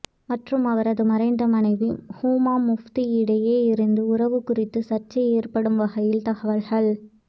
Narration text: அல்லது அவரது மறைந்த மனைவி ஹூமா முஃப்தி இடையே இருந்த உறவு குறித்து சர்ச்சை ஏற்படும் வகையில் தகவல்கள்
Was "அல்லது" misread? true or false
true